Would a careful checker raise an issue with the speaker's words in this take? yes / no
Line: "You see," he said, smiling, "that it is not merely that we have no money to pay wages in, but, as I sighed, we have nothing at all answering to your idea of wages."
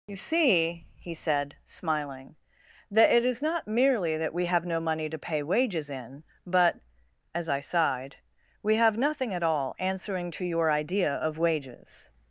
no